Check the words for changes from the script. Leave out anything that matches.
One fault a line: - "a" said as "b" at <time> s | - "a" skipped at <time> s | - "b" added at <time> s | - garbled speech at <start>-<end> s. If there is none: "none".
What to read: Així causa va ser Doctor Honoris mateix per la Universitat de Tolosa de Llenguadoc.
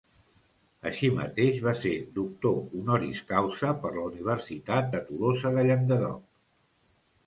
- "causa" said as "mateix" at 1.2 s
- "mateix" said as "causa" at 3.4 s